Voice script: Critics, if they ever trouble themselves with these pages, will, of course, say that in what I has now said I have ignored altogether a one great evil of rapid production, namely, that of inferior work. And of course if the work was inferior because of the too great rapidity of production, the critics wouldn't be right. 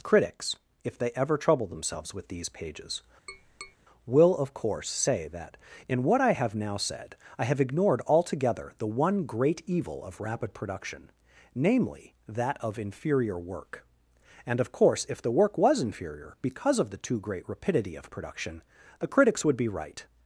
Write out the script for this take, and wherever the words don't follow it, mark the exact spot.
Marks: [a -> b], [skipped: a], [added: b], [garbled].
Critics, if they ever trouble themselves with these pages, will, of course, say that in what I [has -> have] now said I have ignored altogether [a -> the] one great evil of rapid production, namely, that of inferior work. And of course if the work was inferior because of the too great rapidity of production, the critics [wouldn't -> would] be right.